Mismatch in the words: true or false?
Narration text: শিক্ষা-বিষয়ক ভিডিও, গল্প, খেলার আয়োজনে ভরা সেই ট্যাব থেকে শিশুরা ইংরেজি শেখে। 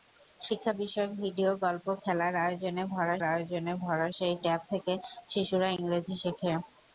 true